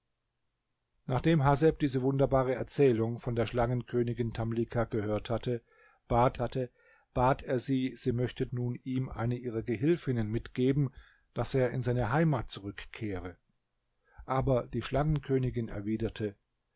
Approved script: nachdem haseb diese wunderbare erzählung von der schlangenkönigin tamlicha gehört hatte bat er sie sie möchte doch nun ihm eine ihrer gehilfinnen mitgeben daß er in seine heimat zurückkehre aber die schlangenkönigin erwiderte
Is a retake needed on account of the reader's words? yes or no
yes